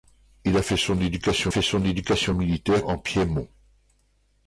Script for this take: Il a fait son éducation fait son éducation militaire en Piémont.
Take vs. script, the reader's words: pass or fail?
pass